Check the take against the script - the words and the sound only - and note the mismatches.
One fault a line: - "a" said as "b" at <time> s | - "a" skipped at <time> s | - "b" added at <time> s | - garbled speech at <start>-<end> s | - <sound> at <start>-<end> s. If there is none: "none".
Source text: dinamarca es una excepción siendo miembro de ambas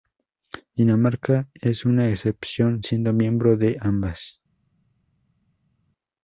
none